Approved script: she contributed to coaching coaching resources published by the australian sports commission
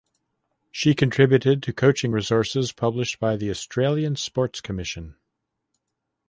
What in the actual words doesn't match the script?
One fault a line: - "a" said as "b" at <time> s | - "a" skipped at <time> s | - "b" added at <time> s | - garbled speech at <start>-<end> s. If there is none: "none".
- "coaching" skipped at 2.1 s